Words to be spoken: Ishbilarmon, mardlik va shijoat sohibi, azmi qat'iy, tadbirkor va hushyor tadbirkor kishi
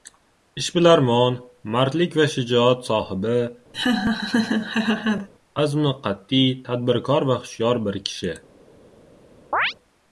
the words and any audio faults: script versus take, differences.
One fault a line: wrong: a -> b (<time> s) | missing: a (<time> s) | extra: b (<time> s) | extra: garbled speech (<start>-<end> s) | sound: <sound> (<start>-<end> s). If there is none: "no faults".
sound: laugh (3.7-5.3 s)
wrong: tadbirkor -> bir (7.9 s)
sound: chirp (9.5-9.7 s)